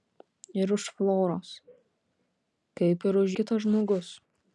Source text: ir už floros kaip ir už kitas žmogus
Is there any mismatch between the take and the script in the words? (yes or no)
no